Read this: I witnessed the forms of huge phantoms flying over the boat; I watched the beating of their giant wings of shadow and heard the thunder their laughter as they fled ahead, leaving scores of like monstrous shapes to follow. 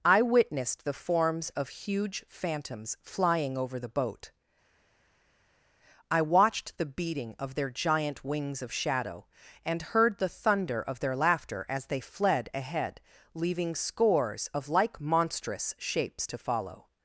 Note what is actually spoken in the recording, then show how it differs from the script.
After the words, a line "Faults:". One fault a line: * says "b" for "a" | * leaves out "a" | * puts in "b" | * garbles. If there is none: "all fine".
I witnessed the forms of huge phantoms flying over the boat; I watched the beating of their giant wings of shadow and heard the thunder of their laughter as they fled ahead, leaving scores of like monstrous shapes to follow.
Faults:
* puts in "of"